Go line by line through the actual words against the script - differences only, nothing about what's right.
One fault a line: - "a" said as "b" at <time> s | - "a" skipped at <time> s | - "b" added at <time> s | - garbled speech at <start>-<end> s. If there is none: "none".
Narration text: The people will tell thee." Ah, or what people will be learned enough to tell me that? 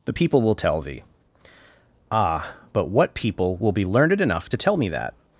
- "or" said as "but" at 2.7 s